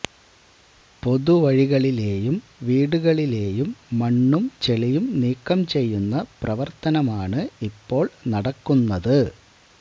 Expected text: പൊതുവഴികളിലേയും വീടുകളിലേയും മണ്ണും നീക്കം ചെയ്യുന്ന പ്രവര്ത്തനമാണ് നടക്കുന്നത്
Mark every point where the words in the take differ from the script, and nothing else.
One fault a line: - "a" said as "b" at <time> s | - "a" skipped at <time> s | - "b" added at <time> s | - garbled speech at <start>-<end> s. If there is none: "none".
- "ചെളിയും" added at 4.6 s
- "ഇപ്പോള്" added at 7.7 s